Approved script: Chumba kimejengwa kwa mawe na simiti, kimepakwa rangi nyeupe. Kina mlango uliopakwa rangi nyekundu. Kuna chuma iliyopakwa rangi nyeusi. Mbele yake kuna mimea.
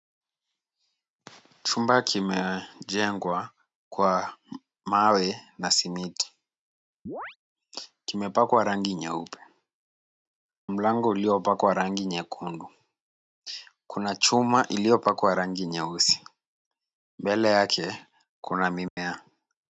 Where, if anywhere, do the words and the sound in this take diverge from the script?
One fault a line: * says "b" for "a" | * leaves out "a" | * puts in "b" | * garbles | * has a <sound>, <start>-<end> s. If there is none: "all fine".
* has a chirp, 7.1-7.4 s
* leaves out "Kina"
* has a dropout, 18.9-19.0 s